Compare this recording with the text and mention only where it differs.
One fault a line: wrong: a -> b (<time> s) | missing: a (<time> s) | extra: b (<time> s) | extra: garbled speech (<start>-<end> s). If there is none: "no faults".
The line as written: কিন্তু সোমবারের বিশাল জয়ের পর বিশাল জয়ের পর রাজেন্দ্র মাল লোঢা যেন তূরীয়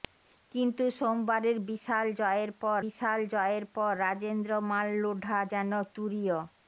no faults